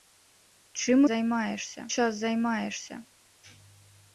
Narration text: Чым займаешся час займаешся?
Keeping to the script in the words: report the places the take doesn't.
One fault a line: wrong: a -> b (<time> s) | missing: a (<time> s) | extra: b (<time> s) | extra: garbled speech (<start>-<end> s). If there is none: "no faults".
no faults